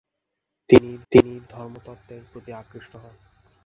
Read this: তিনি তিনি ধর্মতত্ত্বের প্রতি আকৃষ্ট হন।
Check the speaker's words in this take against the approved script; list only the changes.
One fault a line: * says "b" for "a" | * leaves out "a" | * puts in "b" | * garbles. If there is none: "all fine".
all fine